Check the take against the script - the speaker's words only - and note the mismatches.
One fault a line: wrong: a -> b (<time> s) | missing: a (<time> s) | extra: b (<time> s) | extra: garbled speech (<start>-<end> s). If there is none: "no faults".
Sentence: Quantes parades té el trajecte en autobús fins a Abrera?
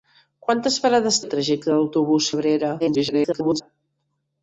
missing: té (1.2 s)
missing: fins (2.3 s)
extra: garbled speech (2.8-3.6 s)